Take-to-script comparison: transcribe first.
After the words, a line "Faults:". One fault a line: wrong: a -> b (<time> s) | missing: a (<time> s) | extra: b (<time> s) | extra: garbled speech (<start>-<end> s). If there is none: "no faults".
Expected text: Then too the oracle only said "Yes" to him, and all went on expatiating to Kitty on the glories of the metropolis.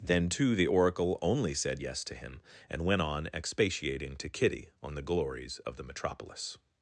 Then too the oracle only said "Yes" to him, and went on expatiating to Kitty on the glories of the metropolis.
Faults:
missing: all (2.9 s)